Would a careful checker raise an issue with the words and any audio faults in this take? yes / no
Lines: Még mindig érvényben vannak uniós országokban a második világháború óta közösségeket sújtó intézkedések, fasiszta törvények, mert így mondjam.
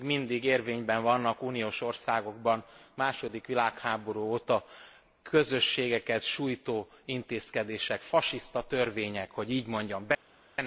yes